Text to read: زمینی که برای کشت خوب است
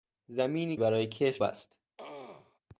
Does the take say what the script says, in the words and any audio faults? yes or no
no